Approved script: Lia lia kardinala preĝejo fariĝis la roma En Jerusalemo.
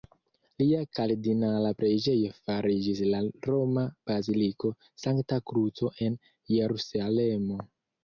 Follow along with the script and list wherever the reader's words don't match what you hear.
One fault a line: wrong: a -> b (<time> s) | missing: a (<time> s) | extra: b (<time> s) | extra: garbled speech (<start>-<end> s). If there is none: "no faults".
missing: lia (0.8 s)
extra: Baziliko Sankta Kruco (4.1 s)